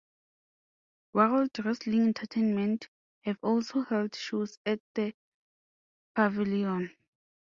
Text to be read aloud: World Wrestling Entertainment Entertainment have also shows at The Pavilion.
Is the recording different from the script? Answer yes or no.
yes